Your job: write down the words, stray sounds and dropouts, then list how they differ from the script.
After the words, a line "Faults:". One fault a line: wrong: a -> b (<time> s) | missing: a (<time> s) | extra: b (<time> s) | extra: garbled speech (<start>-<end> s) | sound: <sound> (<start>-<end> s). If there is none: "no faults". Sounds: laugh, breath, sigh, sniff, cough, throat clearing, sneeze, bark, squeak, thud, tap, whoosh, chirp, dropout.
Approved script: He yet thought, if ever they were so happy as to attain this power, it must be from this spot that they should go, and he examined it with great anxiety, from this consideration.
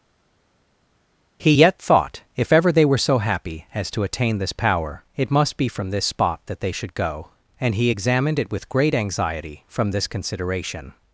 He yet thought, if ever they were so happy as to attain this power, it must be from this spot that they should go, and he examined it with great anxiety, from this consideration.
Faults:
no faults